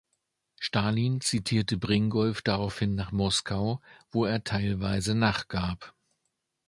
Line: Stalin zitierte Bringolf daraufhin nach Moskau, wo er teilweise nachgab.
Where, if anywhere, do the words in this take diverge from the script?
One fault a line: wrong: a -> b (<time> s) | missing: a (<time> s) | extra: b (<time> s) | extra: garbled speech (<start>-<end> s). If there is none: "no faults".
no faults